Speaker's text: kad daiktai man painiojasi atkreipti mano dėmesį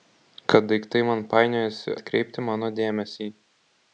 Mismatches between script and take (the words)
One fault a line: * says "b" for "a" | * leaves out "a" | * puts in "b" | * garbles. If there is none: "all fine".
all fine